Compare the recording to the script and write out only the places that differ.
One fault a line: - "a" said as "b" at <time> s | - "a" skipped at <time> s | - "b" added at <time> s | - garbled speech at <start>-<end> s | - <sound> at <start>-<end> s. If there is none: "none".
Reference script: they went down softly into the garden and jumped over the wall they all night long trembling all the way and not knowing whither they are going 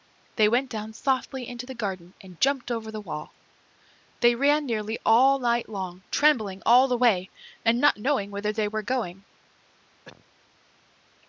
- "ran nearly" added at 4.3 s
- "are" said as "were" at 8.7 s
- cough at 10.1-10.3 s